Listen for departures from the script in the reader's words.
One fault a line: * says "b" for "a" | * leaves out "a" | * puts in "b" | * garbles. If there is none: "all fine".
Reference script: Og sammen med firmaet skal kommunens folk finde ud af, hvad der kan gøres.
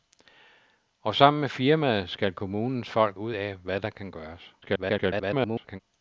* leaves out "finde"
* garbles